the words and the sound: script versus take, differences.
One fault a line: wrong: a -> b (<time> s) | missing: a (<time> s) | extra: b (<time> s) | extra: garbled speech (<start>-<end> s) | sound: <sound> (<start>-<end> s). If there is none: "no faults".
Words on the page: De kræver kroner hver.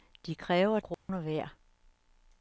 sound: dropout (0.9-1.1 s)